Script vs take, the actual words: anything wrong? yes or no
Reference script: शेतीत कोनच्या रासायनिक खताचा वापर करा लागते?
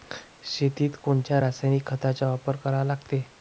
no